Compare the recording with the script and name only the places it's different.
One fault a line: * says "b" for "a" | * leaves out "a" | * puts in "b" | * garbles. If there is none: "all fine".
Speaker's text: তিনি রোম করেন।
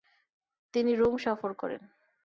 * puts in "সফর"